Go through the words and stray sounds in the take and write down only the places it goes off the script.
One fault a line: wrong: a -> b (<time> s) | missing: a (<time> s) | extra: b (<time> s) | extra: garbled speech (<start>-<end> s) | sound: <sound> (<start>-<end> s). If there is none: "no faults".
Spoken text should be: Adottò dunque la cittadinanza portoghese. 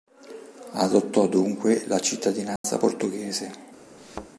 sound: dropout (2.6-2.6 s)
sound: thud (4.0-4.3 s)